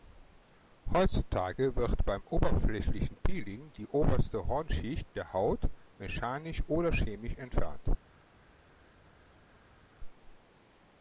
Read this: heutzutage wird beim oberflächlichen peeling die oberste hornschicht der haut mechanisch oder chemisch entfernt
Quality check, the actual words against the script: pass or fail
pass